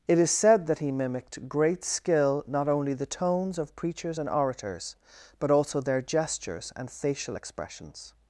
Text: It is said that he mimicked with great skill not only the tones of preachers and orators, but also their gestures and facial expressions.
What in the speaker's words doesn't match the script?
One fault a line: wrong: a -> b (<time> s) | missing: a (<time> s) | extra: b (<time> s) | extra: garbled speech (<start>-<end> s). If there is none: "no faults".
missing: with (1.5 s)